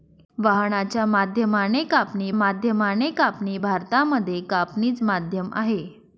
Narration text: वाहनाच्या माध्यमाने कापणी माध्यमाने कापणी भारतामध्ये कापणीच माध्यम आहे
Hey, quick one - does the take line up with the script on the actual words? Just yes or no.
yes